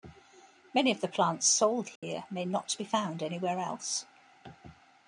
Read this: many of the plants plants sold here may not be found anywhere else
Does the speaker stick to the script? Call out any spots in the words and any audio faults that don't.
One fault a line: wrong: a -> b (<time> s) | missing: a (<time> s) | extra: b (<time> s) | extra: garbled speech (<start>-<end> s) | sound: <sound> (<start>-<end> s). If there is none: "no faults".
missing: plants (1.5 s)
sound: dropout (2.0-2.0 s)